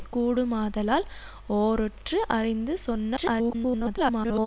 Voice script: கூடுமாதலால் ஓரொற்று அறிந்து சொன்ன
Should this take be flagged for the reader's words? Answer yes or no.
yes